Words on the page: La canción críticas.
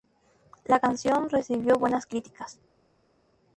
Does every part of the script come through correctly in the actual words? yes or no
no